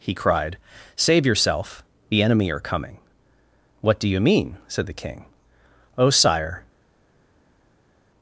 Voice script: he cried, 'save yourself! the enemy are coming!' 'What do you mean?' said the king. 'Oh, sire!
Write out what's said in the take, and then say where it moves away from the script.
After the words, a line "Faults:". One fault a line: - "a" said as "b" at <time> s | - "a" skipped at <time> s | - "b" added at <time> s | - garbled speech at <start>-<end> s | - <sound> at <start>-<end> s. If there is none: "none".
he cried, 'save yourself! the enemy are coming!' 'What do you mean?' said the king. 'Oh, sire!
Faults:
none